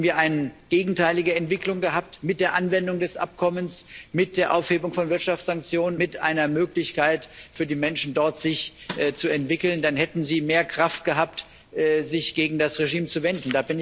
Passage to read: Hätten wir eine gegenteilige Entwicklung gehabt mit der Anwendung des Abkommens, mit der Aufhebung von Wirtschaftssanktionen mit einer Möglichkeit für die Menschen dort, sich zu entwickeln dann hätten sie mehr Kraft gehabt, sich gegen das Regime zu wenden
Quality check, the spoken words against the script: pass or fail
pass